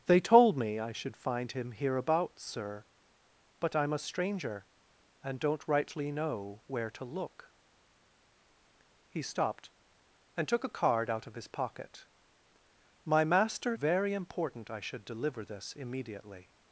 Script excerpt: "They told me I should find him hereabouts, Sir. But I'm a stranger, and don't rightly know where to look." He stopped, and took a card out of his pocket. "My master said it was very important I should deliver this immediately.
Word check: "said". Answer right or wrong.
wrong